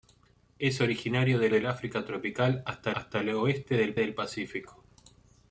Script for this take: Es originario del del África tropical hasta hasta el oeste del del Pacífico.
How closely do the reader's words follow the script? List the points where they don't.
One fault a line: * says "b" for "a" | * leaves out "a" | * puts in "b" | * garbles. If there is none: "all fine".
all fine